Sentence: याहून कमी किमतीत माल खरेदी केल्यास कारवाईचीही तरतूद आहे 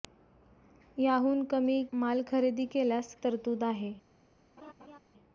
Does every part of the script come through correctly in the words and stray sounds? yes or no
no